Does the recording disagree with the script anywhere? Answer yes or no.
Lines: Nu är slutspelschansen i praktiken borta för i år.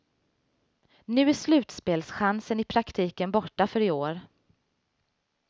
no